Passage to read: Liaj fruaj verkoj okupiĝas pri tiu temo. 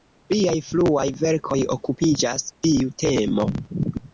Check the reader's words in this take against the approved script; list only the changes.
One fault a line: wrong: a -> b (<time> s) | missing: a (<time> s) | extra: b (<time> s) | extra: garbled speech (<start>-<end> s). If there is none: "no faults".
missing: pri (2.5 s)